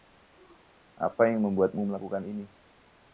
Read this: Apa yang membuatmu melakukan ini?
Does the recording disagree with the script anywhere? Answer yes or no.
no